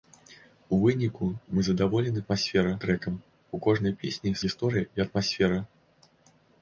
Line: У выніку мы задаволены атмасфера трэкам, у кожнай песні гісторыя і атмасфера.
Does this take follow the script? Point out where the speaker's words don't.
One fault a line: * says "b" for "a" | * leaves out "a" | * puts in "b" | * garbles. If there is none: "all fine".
all fine